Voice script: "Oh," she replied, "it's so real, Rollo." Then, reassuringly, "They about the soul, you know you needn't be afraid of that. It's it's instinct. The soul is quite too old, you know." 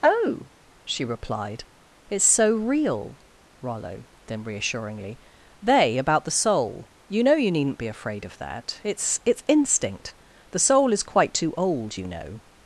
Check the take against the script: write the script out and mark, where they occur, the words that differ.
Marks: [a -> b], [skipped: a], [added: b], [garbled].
"Oh," she replied, "it's so real, Rollo." Then, reassuringly, "They about the soul, you know you needn't be afraid of that. It's it's instinct. The soul is quite too old, you know."